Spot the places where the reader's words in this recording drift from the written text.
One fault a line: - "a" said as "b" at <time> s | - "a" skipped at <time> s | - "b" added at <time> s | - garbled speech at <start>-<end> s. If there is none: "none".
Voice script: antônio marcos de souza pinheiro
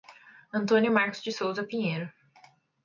none